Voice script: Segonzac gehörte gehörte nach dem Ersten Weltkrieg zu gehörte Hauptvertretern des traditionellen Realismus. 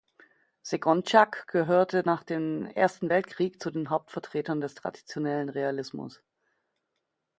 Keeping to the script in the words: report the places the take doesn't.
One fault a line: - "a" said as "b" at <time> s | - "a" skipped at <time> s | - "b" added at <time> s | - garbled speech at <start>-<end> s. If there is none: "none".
- "gehörte" skipped at 2.0 s
- "gehörte" said as "den" at 3.7 s